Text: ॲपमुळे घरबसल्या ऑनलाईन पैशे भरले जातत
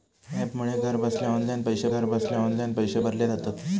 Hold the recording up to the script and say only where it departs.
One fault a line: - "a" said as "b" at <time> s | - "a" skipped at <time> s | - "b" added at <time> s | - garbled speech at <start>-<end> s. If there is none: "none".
- "घरबसल्या ऑनलाईन पैशे" added at 1.9 s